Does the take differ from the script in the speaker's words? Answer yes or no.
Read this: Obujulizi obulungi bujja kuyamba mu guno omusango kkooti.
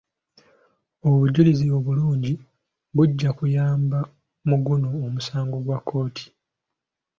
yes